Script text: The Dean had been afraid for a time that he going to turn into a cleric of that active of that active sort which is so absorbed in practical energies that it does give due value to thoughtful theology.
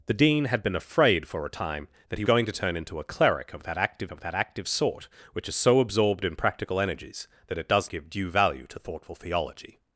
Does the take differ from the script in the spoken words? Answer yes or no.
no